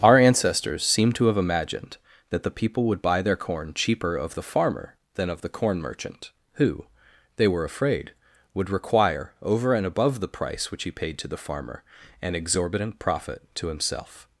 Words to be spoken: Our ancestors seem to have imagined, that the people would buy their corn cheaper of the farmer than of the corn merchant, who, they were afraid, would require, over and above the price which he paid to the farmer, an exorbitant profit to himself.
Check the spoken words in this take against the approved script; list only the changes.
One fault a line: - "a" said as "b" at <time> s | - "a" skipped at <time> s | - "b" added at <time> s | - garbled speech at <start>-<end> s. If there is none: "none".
none